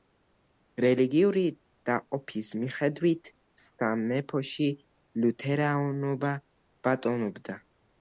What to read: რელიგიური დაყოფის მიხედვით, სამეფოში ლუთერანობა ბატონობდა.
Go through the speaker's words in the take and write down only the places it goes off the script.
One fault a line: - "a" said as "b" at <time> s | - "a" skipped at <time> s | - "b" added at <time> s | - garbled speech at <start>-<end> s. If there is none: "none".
none